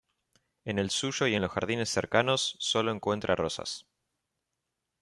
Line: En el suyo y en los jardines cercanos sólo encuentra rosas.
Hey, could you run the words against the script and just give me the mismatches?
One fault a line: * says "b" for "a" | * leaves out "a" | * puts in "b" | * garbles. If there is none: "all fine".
all fine